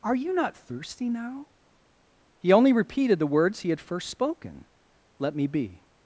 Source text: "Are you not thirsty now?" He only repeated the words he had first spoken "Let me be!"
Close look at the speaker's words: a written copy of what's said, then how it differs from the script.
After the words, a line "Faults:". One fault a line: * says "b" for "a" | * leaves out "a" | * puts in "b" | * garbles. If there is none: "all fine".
"Are you not thirsty now?" He only repeated the words he had first spoken "Let me be!"
Faults:
all fine